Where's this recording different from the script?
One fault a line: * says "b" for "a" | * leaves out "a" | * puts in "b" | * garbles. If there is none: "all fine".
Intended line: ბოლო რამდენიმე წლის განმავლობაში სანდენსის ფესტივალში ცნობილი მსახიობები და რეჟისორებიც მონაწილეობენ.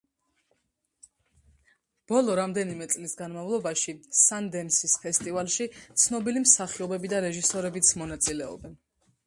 all fine